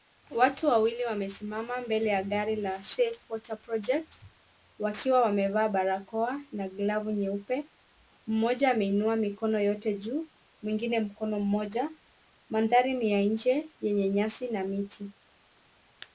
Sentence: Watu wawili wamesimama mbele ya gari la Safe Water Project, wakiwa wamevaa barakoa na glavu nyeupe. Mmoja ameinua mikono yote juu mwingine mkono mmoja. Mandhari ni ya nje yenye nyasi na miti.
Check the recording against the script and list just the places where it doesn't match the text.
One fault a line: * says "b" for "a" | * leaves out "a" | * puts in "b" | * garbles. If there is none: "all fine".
all fine